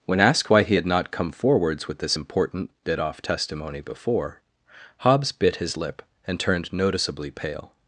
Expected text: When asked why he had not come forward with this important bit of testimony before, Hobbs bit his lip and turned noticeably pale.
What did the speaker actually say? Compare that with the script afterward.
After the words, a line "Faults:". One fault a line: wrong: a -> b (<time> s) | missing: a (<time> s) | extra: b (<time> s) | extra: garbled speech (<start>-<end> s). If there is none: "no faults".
When asked why he had not come forwards with this important bit off testimony before, Hobbs bit his lip and turned noticeably pale.
Faults:
wrong: forward -> forwards (1.3 s)
wrong: of -> off (3.0 s)